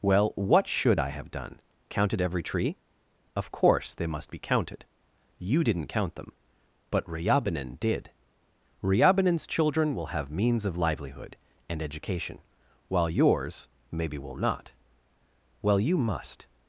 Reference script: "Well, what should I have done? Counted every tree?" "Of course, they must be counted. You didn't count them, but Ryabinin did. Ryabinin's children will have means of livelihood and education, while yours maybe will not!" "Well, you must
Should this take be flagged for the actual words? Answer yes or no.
no